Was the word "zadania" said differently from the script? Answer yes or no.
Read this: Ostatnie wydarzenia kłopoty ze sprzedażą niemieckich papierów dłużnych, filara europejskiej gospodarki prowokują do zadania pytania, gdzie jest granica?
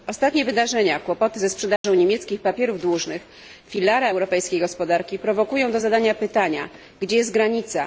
no